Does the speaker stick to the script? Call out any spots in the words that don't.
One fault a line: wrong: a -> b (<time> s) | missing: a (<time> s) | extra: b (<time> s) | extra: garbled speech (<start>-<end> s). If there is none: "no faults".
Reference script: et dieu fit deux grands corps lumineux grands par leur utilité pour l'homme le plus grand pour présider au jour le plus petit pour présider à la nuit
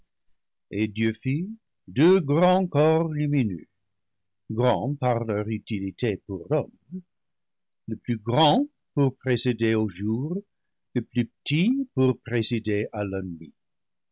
no faults